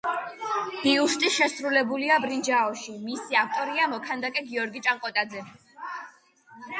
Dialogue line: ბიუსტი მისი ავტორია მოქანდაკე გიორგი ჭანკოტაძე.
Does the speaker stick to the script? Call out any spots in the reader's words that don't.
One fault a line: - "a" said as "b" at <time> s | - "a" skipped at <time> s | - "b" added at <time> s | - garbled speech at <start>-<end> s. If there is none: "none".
- "შესრულებულია ბრინჯაოში" added at 1.3 s